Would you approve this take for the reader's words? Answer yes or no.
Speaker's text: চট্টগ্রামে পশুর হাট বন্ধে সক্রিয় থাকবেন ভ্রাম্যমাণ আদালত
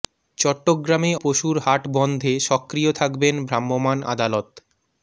yes